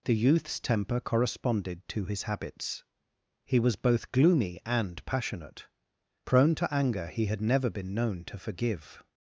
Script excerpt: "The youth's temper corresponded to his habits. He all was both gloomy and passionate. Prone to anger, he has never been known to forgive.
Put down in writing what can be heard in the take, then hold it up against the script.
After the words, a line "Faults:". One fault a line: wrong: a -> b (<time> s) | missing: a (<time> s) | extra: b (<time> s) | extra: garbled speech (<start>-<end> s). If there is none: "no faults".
"The youth's temper corresponded to his habits. He was both gloomy and passionate. Prone to anger, he had never been known to forgive.
Faults:
missing: all (3.6 s)
wrong: has -> had (7.3 s)